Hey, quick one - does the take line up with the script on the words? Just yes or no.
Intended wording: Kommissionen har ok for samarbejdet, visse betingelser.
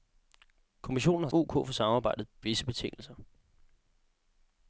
yes